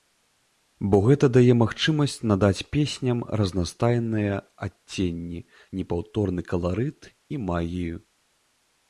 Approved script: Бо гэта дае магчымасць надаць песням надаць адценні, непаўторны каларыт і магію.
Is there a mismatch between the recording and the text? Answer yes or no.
yes